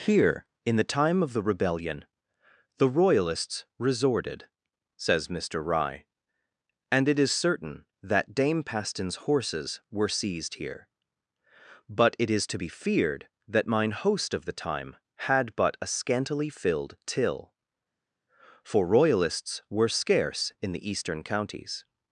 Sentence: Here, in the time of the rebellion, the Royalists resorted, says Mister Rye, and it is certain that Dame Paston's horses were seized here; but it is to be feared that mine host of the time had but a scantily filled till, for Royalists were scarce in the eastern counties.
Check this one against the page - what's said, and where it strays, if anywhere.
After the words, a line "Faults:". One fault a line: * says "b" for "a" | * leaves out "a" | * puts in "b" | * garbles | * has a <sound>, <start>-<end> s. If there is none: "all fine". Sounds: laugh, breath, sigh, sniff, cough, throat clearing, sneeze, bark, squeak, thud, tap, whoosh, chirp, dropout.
Here, in the time of the rebellion, the Royalists resorted, says Mister Rye, and it is certain that Dame Paston's horses were seized here; but it is to be feared that mine host of the time had but a scantily filled till, for Royalists were scarce in the eastern counties.
Faults:
all fine